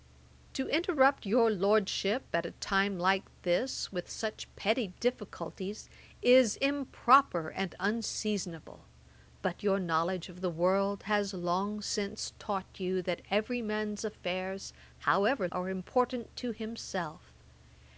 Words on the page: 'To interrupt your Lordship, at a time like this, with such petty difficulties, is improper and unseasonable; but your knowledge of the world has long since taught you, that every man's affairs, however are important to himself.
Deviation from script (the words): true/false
false